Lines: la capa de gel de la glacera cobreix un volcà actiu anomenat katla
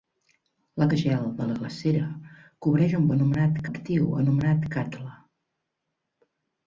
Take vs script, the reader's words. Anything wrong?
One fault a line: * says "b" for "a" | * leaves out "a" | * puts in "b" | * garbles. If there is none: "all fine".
* leaves out "capa"
* says "anomenat" for "volcà"